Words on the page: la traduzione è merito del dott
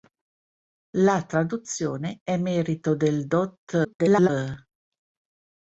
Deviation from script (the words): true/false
true